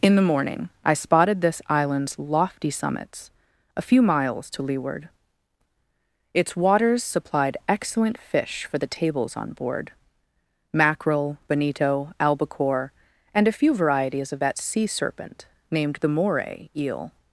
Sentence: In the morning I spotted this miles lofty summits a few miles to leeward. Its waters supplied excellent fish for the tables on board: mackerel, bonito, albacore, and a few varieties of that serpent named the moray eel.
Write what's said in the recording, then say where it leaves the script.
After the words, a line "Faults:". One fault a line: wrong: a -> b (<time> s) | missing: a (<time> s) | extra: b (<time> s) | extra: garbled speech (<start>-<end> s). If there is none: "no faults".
In the morning I spotted this island's lofty summits a few miles to leeward. Its waters supplied excellent fish for the tables on board: mackerel, bonito, albacore, and a few varieties of that sea serpent named the moray eel.
Faults:
wrong: miles -> island's (1.7 s)
extra: sea (14.6 s)